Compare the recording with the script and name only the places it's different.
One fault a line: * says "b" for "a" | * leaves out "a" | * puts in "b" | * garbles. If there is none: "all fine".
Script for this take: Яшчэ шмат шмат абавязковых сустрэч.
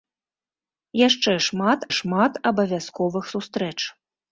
all fine